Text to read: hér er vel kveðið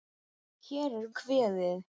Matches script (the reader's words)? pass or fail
fail